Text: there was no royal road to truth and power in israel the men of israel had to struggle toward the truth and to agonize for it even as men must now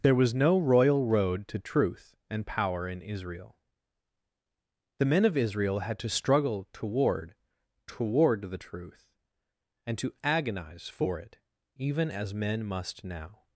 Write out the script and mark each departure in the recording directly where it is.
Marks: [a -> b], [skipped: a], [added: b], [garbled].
there was no royal road to truth and power in israel the men of israel had to struggle toward [added: toward] the truth and to agonize for it even as men must now